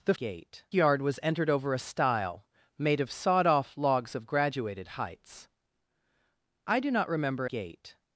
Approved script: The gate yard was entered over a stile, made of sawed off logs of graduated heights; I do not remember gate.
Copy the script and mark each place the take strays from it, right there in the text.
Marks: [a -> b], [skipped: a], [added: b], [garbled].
The gate yard was entered over a stile, made of sawed off logs of graduated heights; I do not remember gate.